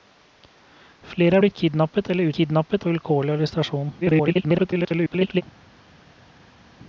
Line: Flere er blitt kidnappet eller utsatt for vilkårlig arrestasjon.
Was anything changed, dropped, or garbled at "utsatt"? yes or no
yes